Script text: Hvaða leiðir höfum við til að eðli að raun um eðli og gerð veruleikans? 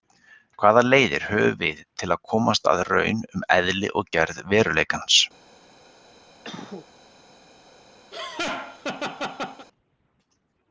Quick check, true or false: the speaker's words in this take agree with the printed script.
false